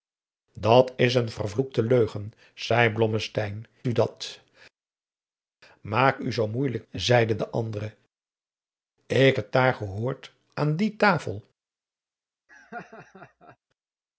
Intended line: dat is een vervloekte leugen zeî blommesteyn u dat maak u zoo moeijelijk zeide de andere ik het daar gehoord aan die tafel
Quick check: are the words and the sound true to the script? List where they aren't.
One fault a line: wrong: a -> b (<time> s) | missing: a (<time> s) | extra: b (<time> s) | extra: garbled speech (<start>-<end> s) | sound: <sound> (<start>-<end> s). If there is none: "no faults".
sound: laugh (12.5-13.6 s)